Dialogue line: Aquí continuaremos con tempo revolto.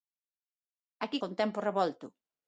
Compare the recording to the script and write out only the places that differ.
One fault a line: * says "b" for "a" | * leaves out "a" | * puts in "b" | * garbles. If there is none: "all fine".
* leaves out "continuaremos"